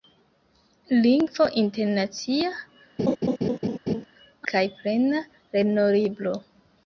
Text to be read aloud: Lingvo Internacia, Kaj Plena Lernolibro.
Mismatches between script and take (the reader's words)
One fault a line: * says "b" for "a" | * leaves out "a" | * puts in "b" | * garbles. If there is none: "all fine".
all fine